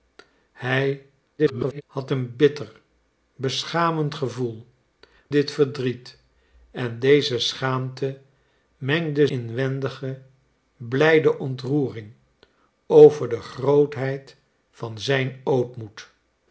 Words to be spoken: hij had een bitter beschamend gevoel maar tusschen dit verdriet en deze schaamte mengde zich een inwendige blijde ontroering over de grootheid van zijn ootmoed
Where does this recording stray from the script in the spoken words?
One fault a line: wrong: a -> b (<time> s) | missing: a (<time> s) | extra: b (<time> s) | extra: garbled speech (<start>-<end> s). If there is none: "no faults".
extra: garbled speech (1.4-1.8 s)
missing: maar tusschen (4.7 s)
missing: zich een (9.3 s)